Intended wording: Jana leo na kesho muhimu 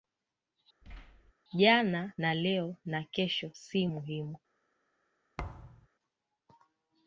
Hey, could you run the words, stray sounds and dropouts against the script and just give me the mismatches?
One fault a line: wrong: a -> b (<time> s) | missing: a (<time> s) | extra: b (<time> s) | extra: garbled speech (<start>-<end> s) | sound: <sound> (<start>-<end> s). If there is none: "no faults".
sound: thud (0.8-1.3 s)
extra: na (2.2 s)
extra: si (3.5 s)
sound: thud (5.4-5.9 s)